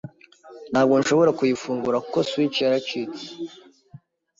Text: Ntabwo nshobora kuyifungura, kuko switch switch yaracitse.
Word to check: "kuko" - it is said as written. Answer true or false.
true